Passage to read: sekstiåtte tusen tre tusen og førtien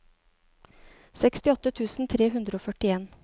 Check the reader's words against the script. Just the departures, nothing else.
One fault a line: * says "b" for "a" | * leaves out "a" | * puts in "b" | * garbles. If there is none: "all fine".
* says "hundre" for "tusen"